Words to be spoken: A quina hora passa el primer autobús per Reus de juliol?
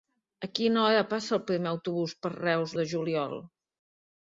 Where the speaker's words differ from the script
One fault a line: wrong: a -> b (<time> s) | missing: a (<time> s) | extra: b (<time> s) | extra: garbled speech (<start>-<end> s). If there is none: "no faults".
no faults